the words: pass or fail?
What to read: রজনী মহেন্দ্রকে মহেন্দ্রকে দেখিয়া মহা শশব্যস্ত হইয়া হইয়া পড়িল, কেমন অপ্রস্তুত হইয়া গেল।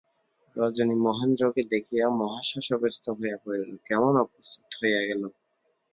fail